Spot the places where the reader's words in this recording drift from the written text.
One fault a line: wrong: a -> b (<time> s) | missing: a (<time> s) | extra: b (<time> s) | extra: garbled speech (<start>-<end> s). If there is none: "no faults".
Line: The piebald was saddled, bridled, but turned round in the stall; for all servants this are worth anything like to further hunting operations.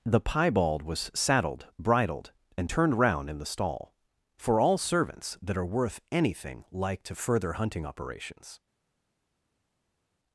wrong: but -> and (2.6 s)
wrong: this -> that (5.4 s)